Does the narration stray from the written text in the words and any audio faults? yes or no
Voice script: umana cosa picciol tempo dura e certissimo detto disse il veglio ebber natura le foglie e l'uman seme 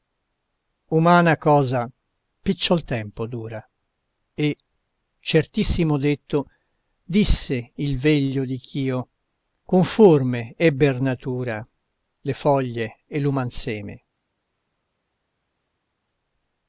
yes